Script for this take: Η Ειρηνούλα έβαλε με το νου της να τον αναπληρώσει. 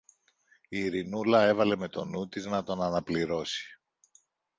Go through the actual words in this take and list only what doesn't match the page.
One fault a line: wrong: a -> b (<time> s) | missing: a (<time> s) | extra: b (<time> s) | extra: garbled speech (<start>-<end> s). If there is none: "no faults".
no faults